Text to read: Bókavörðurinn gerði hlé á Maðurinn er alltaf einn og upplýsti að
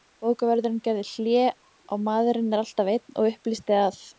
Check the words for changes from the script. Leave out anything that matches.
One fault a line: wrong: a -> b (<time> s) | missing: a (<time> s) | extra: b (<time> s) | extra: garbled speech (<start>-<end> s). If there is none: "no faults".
no faults